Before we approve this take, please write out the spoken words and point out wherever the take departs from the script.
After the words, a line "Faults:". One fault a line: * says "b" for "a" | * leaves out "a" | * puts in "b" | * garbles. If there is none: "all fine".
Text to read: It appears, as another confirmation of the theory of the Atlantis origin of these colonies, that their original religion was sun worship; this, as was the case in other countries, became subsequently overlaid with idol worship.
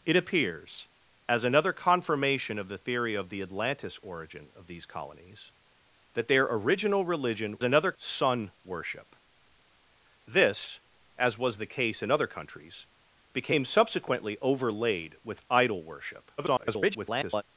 It appears, as another confirmation of the theory of the Atlantis origin of these colonies, that their original religion another sun worship; this, as was the case in other countries, became subsequently overlaid with idol worship. [garbled]
Faults:
* says "another" for "was"
* garbles